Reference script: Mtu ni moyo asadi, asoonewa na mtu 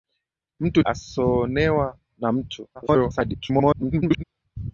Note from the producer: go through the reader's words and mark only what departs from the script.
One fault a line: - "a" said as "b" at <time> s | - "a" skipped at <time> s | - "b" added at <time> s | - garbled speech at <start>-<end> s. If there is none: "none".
- "ni moyo asadi" skipped at 0.8 s
- garbled speech at 2.7-4.2 s